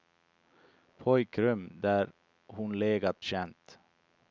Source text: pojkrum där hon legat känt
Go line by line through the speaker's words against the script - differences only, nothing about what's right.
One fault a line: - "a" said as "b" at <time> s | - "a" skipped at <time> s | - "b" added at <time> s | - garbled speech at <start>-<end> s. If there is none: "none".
none